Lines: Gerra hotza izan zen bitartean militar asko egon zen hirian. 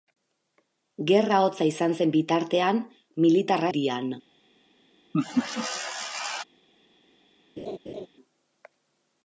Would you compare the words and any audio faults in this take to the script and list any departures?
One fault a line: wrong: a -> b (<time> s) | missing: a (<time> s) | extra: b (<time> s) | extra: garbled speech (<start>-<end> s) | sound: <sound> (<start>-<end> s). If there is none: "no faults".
missing: asko egon zen (3.7 s)
sound: laugh (5.1-6.4 s)
sound: laugh (7.6-8.1 s)